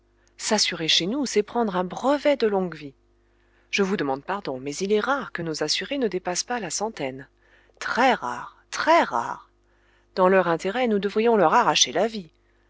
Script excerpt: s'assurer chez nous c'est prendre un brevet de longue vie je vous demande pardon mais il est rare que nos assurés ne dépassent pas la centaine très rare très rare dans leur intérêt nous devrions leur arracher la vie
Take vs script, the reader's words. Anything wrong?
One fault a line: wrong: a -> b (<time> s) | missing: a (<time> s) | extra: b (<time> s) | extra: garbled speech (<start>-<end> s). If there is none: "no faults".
no faults